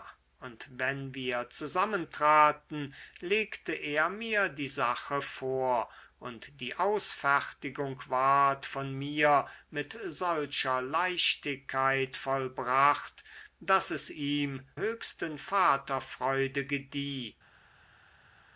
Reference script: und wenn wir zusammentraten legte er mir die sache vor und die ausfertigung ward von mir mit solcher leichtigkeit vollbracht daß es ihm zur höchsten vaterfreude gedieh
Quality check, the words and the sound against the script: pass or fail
fail